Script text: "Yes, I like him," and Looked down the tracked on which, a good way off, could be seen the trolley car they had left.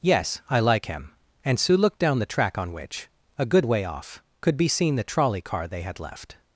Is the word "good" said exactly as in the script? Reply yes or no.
yes